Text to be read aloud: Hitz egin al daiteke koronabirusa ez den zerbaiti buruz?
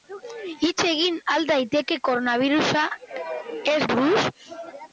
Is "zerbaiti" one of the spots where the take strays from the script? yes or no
yes